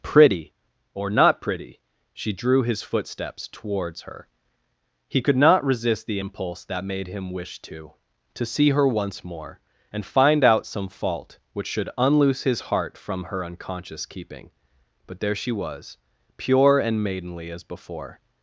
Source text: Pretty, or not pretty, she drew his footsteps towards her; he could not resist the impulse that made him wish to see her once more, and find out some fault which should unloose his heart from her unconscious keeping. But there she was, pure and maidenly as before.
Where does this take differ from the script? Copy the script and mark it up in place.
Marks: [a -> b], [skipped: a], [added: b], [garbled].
Pretty, or not pretty, she drew his footsteps towards her; he could not resist the impulse that made him wish to [added: to] see her once more, and find out some fault which should unloose his heart from her unconscious keeping. But there she was, pure and maidenly as before.